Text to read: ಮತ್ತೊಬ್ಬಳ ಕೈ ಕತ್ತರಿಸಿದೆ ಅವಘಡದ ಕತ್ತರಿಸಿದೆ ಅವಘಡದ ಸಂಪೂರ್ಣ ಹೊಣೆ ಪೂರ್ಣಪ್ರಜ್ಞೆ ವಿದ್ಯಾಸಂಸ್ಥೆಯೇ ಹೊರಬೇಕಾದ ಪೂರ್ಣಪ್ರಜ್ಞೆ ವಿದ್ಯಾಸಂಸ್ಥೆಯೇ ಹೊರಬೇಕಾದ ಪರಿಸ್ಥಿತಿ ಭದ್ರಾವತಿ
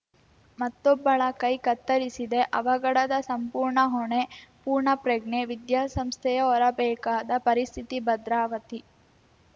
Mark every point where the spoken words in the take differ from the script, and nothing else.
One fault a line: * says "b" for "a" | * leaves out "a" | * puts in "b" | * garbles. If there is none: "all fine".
* leaves out "ಕತ್ತರಿಸಿದೆ ಅವಘಡದ"
* leaves out "ಪೂರ್ಣಪ್ರಜ್ಞೆ ವಿದ್ಯಾಸಂಸ್ಥೆಯೇ ಹೊರಬೇಕಾದ"